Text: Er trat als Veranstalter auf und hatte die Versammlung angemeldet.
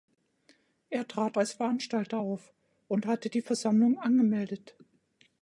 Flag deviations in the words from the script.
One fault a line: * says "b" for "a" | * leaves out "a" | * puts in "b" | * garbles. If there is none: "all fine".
all fine